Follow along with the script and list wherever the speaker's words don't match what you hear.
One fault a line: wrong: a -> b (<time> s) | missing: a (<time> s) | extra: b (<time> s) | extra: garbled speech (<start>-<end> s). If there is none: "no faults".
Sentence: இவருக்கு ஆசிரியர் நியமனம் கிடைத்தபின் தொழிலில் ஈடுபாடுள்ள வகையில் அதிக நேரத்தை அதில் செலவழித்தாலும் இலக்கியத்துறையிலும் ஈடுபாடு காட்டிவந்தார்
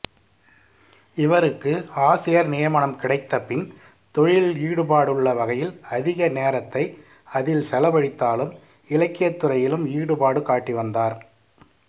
no faults